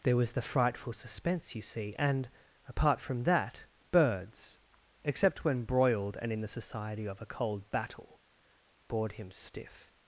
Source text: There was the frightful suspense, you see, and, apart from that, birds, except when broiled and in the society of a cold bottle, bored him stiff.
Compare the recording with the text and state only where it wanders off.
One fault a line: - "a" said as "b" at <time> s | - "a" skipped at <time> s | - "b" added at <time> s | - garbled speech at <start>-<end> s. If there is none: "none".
- "bottle" said as "battle" at 7.7 s